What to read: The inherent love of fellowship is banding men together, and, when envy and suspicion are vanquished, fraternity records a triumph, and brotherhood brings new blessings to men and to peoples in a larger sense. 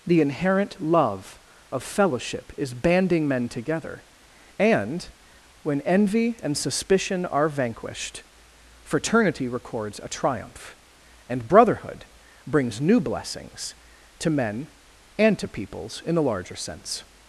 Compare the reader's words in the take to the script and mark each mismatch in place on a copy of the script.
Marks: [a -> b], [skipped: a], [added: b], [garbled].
The inherent love of fellowship is banding men together, and, when envy and suspicion are vanquished, fraternity records a triumph, and brotherhood brings new blessings to men and to peoples in a larger sense.